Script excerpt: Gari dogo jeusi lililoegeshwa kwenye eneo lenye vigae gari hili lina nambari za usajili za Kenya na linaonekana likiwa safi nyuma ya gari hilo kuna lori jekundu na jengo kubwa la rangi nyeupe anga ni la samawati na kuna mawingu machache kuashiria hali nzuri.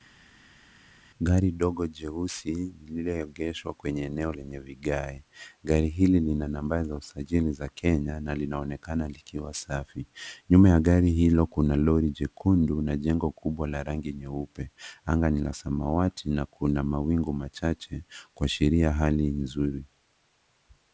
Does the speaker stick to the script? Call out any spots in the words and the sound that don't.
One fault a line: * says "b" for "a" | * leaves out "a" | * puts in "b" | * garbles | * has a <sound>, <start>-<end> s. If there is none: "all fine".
all fine